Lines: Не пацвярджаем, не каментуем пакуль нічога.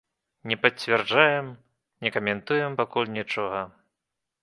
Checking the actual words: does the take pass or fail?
pass